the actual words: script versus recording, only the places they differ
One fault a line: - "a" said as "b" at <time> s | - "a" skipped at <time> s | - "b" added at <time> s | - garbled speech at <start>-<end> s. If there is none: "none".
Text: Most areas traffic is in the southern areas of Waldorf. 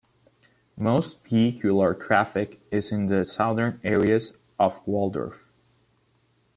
- "areas" said as "vehicular" at 1.2 s